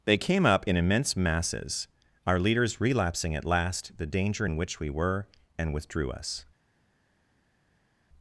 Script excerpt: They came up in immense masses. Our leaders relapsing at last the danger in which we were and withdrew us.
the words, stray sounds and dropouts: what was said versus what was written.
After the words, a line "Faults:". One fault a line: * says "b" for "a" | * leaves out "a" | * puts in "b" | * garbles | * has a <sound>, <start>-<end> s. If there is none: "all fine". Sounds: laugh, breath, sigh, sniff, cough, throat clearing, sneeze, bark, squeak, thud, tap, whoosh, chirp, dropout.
They came up in immense masses. Our leaders relapsing at last the danger in which we were and withdrew us.
Faults:
all fine